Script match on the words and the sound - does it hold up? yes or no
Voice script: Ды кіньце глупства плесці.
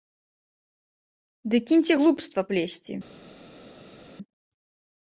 yes